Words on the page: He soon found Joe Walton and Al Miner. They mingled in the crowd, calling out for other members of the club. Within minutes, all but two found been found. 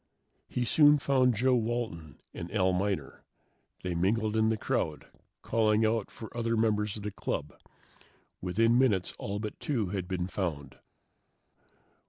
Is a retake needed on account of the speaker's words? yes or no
yes